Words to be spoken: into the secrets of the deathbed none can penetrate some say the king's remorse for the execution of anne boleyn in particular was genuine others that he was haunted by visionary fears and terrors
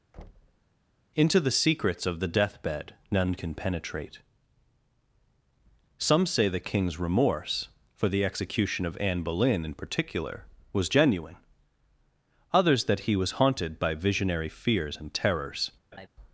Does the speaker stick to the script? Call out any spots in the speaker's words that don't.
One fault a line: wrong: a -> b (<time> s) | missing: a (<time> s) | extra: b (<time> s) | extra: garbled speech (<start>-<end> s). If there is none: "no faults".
no faults